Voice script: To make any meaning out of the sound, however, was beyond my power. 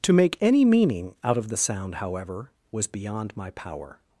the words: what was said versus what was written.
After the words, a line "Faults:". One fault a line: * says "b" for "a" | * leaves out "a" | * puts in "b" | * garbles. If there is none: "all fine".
To make any meaning out of the sound, however, was beyond my power.
Faults:
all fine